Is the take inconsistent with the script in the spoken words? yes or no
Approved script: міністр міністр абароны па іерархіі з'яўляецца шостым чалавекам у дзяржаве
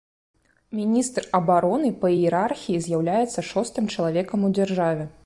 yes